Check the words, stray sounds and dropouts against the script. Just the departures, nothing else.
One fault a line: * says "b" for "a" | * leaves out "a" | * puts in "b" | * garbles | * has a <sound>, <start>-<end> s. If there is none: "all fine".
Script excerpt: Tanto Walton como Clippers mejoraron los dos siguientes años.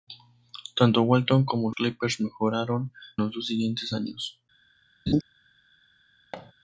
* has a laugh, 5.1-5.2 s
* has a thud, 6.3-6.5 s